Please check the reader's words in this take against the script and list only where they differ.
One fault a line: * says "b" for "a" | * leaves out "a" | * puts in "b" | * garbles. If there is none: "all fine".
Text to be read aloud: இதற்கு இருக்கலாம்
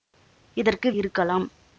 all fine